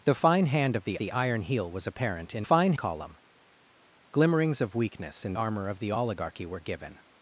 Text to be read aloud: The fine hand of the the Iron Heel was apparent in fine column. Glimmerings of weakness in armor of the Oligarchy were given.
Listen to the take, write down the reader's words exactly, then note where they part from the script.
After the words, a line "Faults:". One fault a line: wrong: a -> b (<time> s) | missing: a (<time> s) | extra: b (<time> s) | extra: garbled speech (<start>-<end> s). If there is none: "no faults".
The fine hand of the the Iron Heel was apparent in fine column. Glimmerings of weakness in armor of the Oligarchy were given.
Faults:
no faults